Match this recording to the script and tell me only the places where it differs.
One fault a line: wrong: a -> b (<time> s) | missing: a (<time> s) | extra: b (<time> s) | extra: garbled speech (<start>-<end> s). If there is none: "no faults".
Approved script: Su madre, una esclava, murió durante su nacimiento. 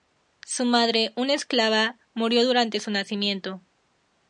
no faults